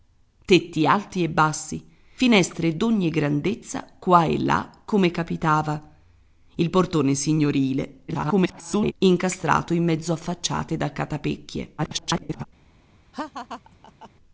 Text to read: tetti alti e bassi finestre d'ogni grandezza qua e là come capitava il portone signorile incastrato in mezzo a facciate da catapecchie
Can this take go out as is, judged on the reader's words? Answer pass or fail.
fail